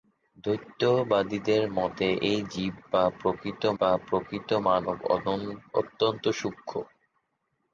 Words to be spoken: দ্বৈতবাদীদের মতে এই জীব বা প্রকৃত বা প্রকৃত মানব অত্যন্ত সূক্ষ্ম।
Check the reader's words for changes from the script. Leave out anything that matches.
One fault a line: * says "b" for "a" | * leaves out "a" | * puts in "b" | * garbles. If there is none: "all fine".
all fine